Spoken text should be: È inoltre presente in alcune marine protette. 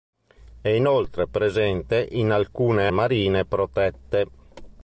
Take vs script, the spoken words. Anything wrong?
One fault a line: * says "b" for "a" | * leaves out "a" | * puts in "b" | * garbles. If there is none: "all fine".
all fine